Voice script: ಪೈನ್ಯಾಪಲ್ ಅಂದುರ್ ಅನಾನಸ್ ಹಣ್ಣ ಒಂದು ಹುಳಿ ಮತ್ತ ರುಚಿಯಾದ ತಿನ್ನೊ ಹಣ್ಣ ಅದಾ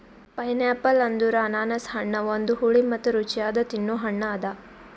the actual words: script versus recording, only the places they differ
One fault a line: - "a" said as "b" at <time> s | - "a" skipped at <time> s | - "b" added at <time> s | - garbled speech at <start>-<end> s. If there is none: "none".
none